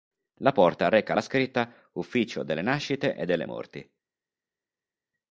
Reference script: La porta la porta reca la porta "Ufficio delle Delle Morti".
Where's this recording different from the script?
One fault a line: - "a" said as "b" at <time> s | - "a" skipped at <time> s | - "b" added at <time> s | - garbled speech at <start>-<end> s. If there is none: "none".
- "la porta" skipped at 0.9 s
- "porta" said as "scritta" at 1.2 s
- "Nascite e" added at 2.6 s